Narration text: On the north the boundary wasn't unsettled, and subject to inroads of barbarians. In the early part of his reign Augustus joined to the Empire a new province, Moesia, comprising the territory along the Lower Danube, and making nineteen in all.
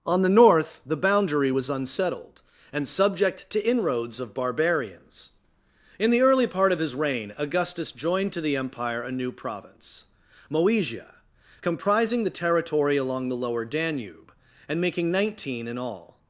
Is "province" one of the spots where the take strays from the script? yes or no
no